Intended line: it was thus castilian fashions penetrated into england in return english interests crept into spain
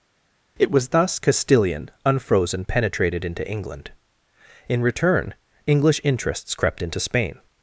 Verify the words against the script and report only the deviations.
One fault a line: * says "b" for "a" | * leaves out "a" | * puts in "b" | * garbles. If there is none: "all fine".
* says "unfrozen" for "fashions"